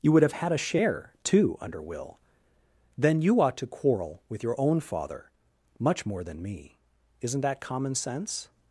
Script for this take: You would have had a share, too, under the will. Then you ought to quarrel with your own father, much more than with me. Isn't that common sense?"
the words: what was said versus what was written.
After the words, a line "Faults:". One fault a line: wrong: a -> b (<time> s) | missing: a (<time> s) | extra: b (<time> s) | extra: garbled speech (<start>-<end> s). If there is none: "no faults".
You would have had a share, too, under will. Then you ought to quarrel with your own father, much more than me. Isn't that common sense?"
Faults:
missing: the (1.8 s)
missing: with (6.4 s)